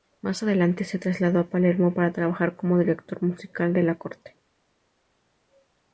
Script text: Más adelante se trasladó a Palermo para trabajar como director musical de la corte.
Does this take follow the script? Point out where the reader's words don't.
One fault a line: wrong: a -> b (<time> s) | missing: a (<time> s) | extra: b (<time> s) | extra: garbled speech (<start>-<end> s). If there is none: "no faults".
no faults